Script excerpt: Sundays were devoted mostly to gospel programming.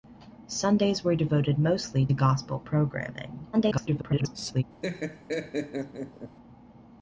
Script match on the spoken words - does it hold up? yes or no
no